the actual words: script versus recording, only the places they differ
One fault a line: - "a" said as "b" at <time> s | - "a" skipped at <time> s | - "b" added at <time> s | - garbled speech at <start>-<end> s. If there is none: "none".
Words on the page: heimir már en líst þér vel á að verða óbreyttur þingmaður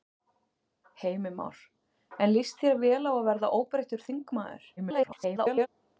- garbled speech at 4.8-5.7 s